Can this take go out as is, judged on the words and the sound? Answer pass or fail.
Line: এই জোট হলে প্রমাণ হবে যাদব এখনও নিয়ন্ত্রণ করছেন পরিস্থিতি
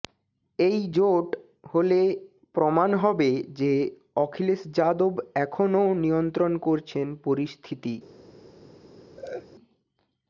fail